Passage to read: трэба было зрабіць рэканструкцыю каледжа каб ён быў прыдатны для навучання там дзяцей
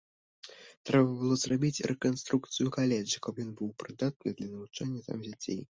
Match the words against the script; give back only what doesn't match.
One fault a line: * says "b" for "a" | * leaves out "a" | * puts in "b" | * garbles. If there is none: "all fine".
all fine